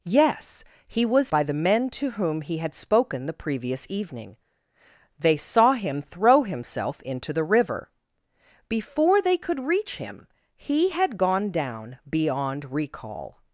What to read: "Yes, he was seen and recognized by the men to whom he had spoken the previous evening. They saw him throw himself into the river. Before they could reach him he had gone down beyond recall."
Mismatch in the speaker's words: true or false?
true